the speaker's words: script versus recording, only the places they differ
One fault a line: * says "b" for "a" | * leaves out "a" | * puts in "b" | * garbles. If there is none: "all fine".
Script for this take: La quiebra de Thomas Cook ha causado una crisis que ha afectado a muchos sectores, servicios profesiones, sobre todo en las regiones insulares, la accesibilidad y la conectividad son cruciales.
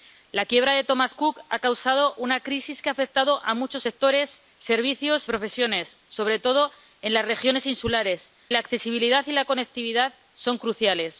all fine